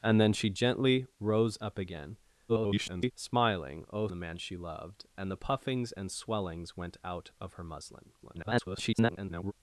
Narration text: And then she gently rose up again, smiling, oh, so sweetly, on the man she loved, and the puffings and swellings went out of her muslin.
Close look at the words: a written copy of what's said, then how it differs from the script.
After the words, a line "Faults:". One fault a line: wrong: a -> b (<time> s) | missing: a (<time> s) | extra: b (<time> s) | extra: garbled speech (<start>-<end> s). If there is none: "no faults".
And then she gently rose up again, [garbled] smiling, oh, the man she loved, and the puffings and swellings went out of her muslin. [garbled]
Faults:
extra: garbled speech (2.5-3.1 s)
missing: so sweetly on (4.1 s)
extra: garbled speech (8.2-9.5 s)